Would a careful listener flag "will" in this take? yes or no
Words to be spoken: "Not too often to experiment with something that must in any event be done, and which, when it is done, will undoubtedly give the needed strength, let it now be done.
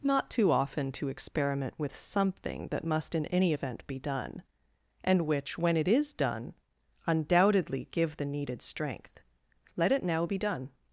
yes